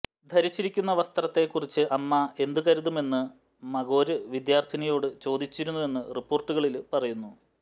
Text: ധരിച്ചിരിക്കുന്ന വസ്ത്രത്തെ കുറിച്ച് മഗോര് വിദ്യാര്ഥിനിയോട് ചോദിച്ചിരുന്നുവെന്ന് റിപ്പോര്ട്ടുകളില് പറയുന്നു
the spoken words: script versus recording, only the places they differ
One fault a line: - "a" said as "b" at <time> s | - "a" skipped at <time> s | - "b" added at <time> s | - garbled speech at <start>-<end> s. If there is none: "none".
- "അമ്മ എന്തു കരുതുമെന്ന്" added at 1.9 s